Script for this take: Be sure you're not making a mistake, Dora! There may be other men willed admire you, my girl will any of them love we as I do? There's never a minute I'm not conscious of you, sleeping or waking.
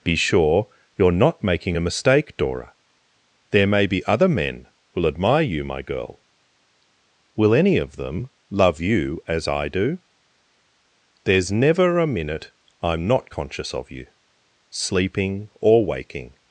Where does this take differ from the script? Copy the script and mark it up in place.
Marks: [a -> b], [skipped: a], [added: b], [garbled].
Be sure you're not making a mistake, Dora! There may be other men [willed -> will] admire you, my girl will any of them love [we -> you] as I do? There's never a minute I'm not conscious of you, sleeping or waking.